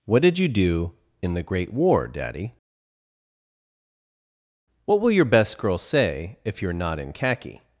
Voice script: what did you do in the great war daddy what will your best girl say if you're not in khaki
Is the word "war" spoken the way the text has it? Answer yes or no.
yes